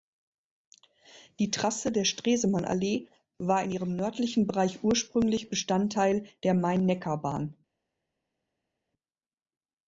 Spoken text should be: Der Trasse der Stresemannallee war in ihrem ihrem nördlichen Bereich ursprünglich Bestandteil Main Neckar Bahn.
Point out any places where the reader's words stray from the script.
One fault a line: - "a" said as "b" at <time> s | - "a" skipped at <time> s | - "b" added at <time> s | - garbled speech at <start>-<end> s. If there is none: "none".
- "Der" said as "Die" at 1.4 s
- "ihrem" skipped at 4.0 s
- "der" added at 6.4 s